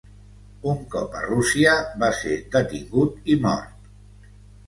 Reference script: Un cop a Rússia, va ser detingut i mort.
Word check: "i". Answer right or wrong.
right